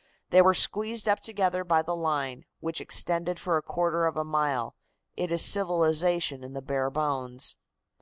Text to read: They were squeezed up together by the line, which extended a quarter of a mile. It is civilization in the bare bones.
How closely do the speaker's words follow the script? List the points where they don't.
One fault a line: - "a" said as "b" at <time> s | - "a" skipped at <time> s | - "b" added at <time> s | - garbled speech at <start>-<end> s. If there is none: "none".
- "for" added at 3.4 s